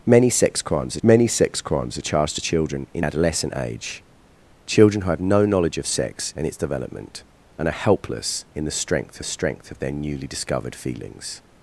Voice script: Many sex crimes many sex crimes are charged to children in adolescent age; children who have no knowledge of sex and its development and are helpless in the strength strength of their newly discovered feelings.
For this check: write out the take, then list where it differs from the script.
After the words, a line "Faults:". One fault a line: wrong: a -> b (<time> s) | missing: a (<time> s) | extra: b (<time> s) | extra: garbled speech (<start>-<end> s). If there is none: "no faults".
Many sex crimes many sex crimes are charged to children in adolescent age; children who have no knowledge of sex and its development and are helpless in the strength strength of their newly discovered feelings.
Faults:
no faults